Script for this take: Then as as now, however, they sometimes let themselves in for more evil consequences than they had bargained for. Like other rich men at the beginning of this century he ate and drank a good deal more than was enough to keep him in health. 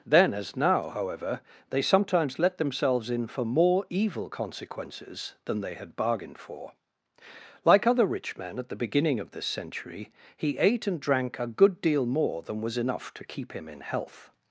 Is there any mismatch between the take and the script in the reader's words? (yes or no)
yes